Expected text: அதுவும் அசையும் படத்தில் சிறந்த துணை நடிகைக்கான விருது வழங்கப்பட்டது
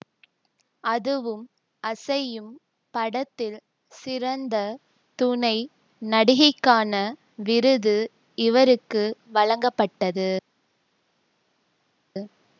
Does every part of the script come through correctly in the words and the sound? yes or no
no